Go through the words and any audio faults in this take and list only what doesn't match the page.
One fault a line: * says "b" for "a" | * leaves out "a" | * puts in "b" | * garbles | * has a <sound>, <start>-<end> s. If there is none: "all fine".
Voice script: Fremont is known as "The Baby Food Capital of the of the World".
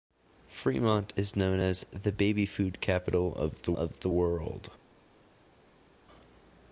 all fine